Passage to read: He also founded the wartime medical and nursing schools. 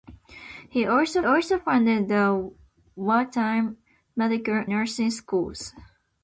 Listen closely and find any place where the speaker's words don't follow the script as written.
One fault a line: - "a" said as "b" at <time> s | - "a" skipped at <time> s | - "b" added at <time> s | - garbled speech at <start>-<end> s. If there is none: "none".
- "also" added at 1.2 s
- "and" skipped at 4.6 s